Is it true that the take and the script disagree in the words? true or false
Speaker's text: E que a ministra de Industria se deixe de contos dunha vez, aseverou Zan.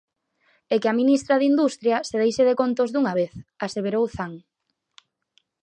false